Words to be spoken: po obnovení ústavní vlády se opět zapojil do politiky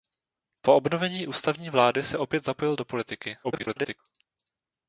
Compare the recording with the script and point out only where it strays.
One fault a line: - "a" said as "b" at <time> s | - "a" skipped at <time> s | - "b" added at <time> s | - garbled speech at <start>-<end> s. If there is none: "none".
- garbled speech at 3.4-4.0 s